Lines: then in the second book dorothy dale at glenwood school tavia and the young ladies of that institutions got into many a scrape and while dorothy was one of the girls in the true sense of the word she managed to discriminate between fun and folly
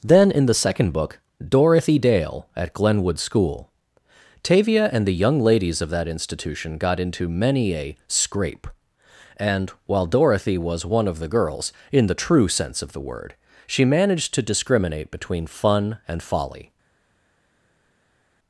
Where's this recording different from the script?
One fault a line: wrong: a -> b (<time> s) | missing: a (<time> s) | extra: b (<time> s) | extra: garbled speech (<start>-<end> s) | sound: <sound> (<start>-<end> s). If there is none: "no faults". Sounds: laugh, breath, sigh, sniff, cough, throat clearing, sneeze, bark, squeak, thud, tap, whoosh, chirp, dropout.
wrong: institutions -> institution (6.1 s)